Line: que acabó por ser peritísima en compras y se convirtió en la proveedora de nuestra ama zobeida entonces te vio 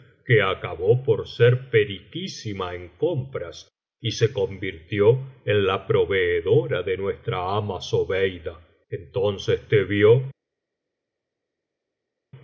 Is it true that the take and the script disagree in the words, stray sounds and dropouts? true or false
false